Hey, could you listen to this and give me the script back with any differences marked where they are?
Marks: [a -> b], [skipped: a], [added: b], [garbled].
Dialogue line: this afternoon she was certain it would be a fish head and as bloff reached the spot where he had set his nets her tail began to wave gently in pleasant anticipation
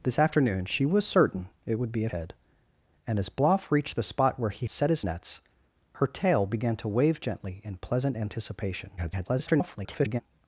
this afternoon she was certain it would be a [skipped: fish] head and as bloff reached the spot where he [skipped: had] set his nets her tail began to wave gently in pleasant anticipation [garbled]